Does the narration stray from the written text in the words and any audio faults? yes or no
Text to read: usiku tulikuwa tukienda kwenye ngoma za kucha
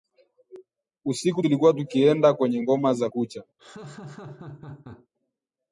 yes